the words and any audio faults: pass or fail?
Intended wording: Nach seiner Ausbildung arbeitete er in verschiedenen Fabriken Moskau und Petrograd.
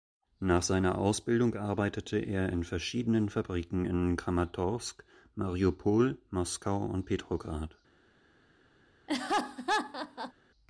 fail